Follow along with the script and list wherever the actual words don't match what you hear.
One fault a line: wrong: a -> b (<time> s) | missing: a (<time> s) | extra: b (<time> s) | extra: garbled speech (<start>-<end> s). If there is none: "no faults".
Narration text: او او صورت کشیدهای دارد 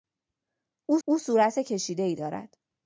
no faults